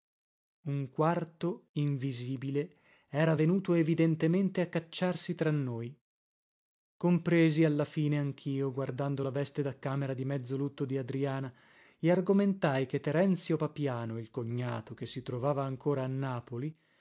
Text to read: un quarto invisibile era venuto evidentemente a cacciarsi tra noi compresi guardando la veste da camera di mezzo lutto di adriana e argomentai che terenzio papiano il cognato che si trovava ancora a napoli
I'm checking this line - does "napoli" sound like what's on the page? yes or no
yes